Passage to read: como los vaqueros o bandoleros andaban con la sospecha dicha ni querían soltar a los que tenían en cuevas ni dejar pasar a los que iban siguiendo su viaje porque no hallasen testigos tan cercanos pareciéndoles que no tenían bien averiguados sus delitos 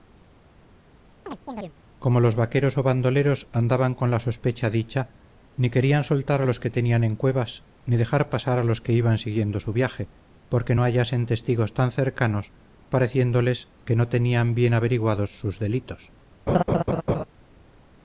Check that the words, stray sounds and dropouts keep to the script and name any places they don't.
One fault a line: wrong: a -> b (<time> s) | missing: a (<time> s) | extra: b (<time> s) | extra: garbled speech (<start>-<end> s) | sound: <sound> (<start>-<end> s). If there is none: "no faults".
sound: chirp (1.3-1.7 s)
sound: laugh (16.5-17.2 s)